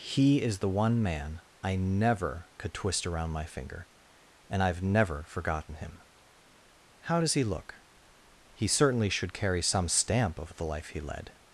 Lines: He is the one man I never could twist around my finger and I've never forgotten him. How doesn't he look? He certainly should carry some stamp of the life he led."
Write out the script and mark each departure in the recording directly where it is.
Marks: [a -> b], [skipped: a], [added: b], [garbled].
He is the one man I never could twist around my finger and I've never forgotten him. How [doesn't -> does] he look? He certainly should carry some stamp of the life he led."